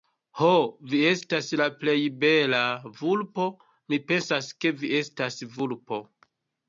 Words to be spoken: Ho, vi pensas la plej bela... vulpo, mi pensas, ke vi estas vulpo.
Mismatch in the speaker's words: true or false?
true